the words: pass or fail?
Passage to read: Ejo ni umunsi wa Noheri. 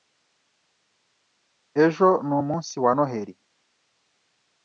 pass